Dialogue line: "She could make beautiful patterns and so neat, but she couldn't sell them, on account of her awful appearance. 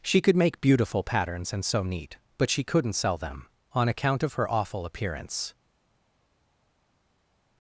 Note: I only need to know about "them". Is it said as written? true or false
true